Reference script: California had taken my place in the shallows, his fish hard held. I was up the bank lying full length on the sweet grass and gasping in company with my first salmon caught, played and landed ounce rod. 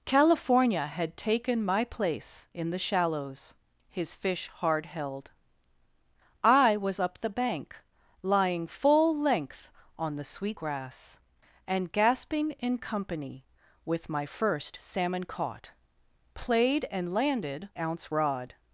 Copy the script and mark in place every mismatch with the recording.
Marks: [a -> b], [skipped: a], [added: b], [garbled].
California had taken my place in the shallows, his fish hard held. I was up the bank lying full length on the sweet grass and gasping in company with my first salmon caught, played and landed ounce rod.